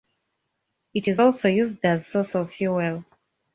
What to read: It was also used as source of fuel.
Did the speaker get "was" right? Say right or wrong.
wrong